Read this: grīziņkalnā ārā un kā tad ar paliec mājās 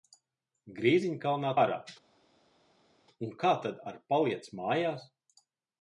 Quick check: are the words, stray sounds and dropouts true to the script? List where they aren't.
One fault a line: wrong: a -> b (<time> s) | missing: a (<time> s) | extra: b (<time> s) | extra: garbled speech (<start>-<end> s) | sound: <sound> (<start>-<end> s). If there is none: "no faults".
no faults